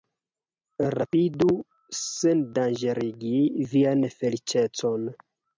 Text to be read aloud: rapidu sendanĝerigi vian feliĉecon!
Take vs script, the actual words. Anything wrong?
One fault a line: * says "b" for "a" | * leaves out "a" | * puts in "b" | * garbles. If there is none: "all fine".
all fine